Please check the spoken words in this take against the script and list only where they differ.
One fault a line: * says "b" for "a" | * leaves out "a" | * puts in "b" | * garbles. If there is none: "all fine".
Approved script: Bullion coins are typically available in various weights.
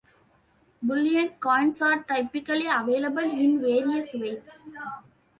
all fine